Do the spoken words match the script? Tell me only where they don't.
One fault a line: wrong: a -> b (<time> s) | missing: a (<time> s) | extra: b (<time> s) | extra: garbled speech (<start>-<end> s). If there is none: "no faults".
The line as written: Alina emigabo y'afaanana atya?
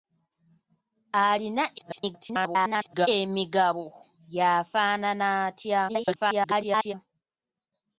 extra: garbled speech (1.8-3.1 s)
extra: garbled speech (5.9-6.9 s)